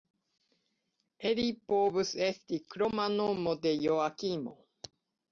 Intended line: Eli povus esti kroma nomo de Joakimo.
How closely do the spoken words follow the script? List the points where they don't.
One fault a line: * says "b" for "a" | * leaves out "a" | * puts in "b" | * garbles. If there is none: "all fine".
all fine